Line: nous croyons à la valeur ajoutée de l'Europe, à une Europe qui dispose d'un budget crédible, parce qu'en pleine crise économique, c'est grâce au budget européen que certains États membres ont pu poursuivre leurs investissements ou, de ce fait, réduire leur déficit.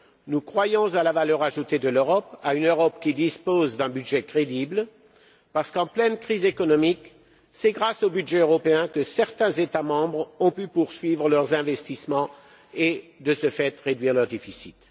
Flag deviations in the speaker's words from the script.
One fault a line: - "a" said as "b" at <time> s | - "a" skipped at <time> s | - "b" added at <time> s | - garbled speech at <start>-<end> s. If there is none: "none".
- "ou" said as "et" at 12.7 s